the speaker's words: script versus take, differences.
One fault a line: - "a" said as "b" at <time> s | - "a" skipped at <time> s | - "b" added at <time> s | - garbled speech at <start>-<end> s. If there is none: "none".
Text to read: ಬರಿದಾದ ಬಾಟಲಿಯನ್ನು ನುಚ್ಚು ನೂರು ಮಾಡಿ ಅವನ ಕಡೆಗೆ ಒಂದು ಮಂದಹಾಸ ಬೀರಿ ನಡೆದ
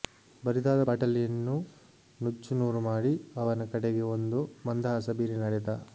none